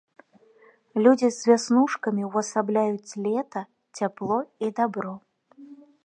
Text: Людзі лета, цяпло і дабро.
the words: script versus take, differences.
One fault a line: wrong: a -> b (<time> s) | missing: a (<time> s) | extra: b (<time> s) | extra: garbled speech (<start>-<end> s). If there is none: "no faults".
extra: з вяснушкамі ўвасабляюць (1.4 s)